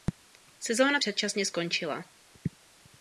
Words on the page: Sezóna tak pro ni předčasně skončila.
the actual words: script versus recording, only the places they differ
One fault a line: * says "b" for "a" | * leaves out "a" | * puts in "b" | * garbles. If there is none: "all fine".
* leaves out "tak pro ni"